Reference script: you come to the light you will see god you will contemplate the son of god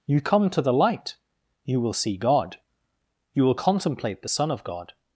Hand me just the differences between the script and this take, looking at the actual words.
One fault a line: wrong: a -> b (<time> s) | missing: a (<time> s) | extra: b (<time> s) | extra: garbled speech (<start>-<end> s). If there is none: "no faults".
no faults